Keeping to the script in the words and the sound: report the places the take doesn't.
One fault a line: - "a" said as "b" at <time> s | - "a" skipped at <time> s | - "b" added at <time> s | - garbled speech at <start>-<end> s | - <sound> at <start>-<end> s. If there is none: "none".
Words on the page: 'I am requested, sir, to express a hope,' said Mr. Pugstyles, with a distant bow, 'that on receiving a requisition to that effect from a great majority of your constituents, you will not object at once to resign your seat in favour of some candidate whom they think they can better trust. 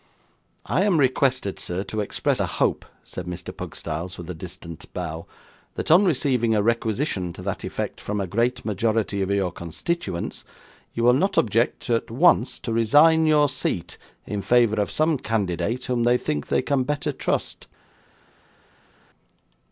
none